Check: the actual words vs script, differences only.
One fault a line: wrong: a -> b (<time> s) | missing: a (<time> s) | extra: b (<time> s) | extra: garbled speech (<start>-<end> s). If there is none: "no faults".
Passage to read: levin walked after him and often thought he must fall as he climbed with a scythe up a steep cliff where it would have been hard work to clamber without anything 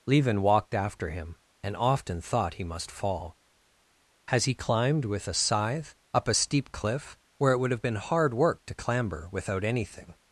wrong: as -> has (4.3 s)